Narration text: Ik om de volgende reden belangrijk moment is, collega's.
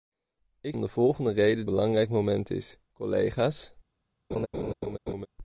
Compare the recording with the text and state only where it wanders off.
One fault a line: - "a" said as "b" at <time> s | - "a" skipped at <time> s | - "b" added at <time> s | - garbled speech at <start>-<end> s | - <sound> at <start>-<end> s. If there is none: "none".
- laugh at 4.3-5.3 s